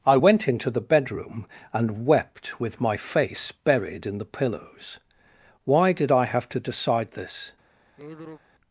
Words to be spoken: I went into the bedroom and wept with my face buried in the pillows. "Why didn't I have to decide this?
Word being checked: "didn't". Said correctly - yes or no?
no